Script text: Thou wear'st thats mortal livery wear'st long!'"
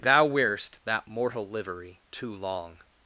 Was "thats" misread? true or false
true